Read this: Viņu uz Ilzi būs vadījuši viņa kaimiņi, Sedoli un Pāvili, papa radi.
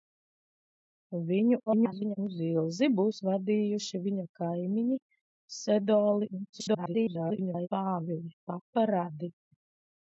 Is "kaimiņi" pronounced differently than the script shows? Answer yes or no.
no